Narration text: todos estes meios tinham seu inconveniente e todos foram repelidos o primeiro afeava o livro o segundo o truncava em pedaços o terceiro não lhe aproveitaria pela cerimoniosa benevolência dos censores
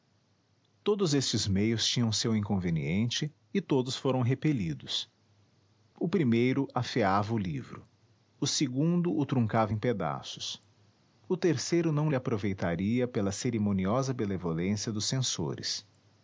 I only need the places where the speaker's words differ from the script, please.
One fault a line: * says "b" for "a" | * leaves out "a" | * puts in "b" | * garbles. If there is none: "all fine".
all fine